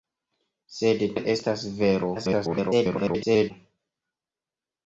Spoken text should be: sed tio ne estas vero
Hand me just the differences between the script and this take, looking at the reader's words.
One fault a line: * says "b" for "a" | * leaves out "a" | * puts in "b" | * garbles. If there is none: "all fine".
* leaves out "tio"
* garbles